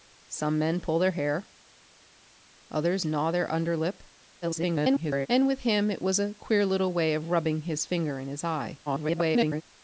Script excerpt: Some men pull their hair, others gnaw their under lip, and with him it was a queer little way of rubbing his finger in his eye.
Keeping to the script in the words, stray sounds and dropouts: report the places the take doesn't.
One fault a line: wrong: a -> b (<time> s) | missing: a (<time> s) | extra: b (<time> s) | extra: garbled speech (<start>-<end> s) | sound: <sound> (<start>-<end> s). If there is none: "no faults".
extra: garbled speech (4.4-5.3 s)
extra: garbled speech (8.9-9.6 s)